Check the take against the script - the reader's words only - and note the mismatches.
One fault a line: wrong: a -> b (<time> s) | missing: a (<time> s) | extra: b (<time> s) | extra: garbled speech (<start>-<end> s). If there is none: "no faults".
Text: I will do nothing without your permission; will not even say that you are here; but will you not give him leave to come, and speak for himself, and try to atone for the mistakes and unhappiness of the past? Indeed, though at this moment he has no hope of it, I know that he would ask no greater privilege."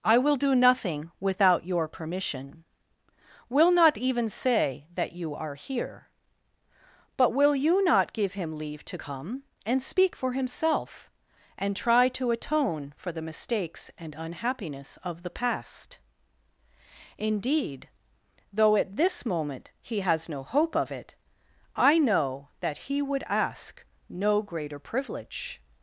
no faults